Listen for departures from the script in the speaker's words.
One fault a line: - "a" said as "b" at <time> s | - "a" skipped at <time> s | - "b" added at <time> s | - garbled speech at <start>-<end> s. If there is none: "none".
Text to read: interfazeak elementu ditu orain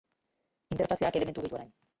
none